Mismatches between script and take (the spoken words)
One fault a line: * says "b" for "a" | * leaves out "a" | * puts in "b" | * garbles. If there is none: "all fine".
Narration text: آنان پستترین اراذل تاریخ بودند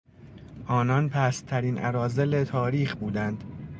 all fine